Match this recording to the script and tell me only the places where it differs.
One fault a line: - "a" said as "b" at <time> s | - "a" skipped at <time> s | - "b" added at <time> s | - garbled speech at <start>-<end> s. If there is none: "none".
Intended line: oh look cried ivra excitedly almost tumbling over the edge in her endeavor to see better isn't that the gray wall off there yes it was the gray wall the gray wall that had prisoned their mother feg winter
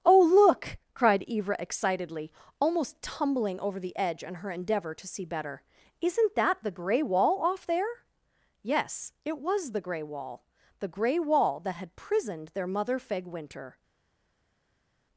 none